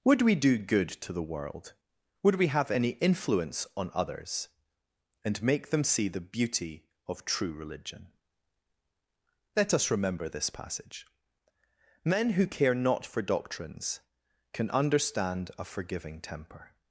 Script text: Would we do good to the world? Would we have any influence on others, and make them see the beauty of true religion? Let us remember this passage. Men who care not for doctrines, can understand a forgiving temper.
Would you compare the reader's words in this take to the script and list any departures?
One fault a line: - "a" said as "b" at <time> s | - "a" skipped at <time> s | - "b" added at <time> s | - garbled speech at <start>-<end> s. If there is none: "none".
none